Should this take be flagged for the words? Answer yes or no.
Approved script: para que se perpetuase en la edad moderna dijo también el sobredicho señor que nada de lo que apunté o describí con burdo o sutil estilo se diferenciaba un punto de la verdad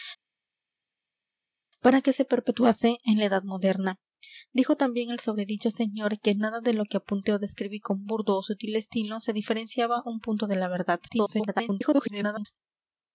yes